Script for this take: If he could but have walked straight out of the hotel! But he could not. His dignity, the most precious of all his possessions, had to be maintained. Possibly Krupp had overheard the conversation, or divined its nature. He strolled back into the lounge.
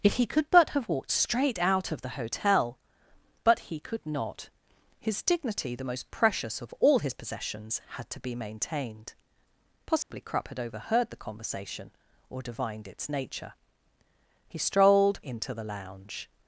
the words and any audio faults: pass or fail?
fail